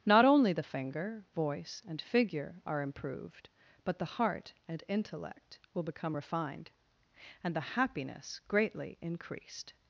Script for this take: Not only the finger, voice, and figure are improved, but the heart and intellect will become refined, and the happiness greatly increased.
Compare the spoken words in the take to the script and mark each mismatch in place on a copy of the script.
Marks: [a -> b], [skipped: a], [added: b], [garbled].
Not only the finger, voice, and figure are improved, but the heart and intellect will become refined, and the happiness greatly increased.